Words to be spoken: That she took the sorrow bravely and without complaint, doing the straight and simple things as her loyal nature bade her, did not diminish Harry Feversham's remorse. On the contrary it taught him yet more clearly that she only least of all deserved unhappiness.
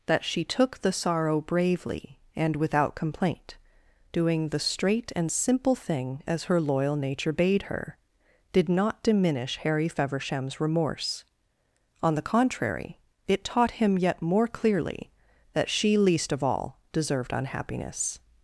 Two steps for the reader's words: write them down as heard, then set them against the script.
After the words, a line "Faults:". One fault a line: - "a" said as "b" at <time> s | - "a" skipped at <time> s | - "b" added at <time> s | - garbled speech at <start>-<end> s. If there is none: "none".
That she took the sorrow bravely and without complaint, doing the straight and simple thing as her loyal nature bade her, did not diminish Harry Feversham's remorse. On the contrary it taught him yet more clearly that she least of all deserved unhappiness.
Faults:
- "things" said as "thing" at 5.8 s
- "only" skipped at 16.0 s